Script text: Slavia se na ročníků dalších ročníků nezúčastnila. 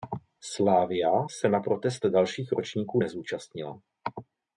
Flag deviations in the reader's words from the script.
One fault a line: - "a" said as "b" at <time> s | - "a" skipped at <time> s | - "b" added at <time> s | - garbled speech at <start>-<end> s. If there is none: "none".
- "ročníků" said as "protest" at 1.6 s